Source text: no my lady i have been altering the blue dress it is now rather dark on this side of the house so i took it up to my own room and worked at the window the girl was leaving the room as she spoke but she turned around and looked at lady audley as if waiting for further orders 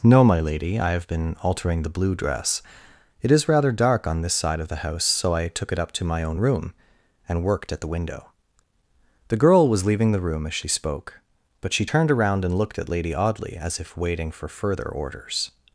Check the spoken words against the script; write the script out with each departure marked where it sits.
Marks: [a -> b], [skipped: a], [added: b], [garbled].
no my lady i have been altering the blue dress it is [skipped: now] rather dark on this side of the house so i took it up to my own room and worked at the window the girl was leaving the room as she spoke but she turned around and looked at lady audley as if waiting for further orders